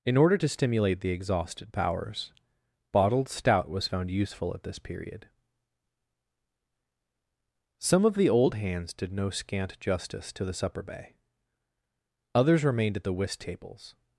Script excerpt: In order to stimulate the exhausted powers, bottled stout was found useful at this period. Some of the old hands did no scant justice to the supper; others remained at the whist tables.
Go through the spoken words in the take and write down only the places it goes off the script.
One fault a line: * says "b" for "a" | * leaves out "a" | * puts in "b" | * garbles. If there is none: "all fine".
* puts in "bay"